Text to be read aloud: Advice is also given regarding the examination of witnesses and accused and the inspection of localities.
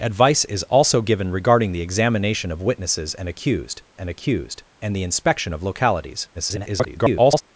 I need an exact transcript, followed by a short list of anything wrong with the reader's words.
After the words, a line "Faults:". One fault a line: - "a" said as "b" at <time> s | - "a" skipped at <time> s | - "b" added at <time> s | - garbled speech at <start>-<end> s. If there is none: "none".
Advice is also given regarding the examination of witnesses and accused and accused and the inspection of localities. [garbled]
Faults:
- "accused and" added at 4.1 s
- garbled speech at 6.3-7.4 s